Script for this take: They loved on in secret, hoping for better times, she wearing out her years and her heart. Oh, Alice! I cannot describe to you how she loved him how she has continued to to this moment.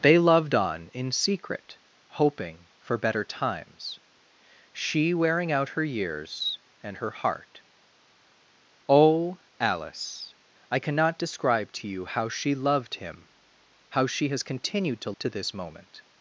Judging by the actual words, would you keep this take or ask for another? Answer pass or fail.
pass